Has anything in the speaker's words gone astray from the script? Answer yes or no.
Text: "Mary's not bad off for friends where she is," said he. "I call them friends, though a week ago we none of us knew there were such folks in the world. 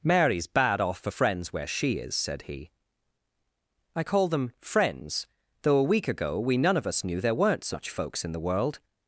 yes